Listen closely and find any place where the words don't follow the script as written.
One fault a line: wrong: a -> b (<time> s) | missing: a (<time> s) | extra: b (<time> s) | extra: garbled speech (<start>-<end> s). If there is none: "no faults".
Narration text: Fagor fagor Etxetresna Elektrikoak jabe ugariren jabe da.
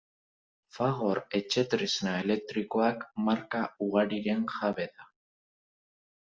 missing: fagor (1.2 s)
wrong: jabe -> marka (3.3 s)